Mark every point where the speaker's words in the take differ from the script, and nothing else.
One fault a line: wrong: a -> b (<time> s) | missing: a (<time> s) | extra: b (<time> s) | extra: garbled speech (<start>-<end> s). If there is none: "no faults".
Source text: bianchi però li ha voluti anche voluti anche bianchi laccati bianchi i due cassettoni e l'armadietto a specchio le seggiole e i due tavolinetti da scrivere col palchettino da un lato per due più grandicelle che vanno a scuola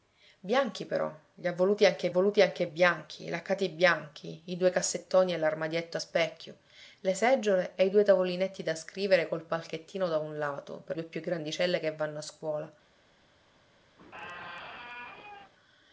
no faults